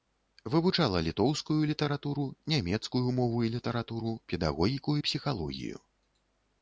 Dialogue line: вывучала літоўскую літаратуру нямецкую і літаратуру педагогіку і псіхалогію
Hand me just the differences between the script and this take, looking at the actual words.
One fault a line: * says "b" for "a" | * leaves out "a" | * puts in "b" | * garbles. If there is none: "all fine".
* puts in "мову"